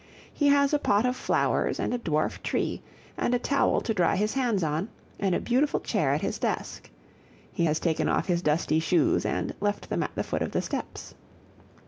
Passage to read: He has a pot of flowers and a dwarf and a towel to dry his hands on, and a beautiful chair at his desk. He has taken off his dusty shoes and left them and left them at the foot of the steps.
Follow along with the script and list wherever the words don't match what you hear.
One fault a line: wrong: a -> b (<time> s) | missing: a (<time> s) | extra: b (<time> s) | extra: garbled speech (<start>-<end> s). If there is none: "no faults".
extra: tree (2.4 s)
missing: and left them (10.0 s)